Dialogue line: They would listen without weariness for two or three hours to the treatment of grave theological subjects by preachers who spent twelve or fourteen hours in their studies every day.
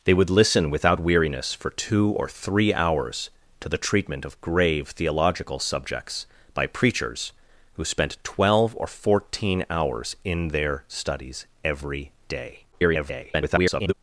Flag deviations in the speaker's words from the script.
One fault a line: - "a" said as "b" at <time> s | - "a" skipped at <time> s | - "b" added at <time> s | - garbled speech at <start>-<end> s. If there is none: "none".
- garbled speech at 12.7-13.9 s